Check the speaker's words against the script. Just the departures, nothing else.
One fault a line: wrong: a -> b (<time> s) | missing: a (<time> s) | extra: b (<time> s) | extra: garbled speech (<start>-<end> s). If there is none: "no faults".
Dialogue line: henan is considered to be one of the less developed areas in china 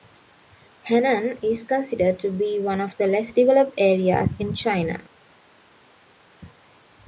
no faults